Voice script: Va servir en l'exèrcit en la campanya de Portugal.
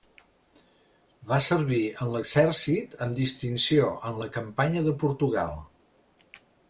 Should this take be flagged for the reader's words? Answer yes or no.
yes